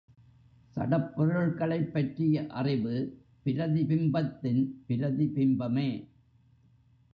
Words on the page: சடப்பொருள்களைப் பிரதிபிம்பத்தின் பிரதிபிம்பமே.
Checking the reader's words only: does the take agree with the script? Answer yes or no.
no